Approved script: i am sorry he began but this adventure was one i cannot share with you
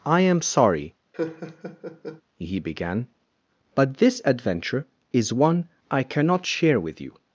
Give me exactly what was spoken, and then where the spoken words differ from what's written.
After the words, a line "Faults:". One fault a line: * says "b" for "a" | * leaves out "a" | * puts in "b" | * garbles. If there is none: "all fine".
i am sorry he began but this adventure is one i cannot share with you
Faults:
* says "is" for "was"